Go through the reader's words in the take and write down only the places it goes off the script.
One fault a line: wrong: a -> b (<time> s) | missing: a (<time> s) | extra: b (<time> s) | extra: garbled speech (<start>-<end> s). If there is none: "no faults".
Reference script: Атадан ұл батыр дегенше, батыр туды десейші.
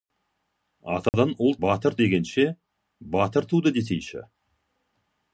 no faults